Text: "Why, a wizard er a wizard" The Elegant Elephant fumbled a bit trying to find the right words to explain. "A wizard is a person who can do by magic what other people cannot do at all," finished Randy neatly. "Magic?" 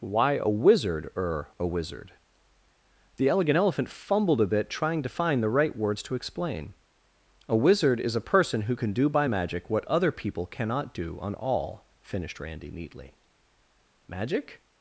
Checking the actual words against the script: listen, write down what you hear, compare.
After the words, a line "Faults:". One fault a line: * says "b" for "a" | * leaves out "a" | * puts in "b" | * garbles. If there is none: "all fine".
"Why, a wizard er a wizard" The Elegant Elephant fumbled a bit trying to find the right words to explain. "A wizard is a person who can do by magic what other people cannot do on all," finished Randy neatly. "Magic?"
Faults:
* says "on" for "at"